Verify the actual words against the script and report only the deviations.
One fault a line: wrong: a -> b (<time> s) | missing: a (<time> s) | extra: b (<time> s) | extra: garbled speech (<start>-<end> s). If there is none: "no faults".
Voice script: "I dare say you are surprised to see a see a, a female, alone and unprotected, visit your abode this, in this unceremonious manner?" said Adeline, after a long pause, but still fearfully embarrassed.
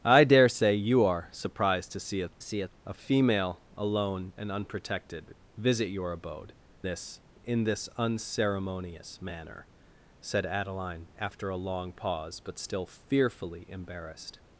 no faults